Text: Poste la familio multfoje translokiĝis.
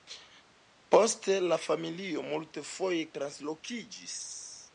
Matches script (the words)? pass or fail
pass